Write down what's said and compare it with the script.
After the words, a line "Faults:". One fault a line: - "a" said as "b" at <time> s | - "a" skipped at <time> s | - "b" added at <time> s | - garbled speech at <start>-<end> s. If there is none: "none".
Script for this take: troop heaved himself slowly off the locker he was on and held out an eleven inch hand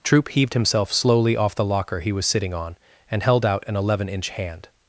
troop heaved himself slowly off the locker he was sitting on and held out an eleven inch hand
Faults:
- "sitting" added at 2.2 s